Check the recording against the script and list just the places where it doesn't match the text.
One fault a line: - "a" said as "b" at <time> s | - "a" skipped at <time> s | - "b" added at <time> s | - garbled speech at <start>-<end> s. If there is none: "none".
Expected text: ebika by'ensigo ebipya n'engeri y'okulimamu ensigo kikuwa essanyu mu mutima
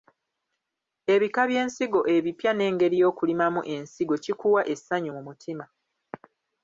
none